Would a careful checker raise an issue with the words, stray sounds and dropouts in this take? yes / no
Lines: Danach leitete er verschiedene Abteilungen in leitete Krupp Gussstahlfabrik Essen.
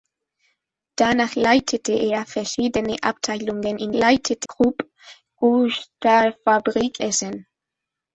no